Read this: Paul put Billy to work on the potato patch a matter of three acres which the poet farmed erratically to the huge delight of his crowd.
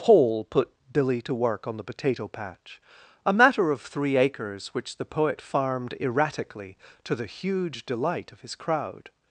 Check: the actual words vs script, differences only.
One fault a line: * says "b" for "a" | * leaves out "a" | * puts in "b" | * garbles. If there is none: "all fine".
all fine